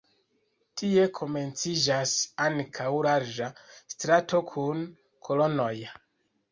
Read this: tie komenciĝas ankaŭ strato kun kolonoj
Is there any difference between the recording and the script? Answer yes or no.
yes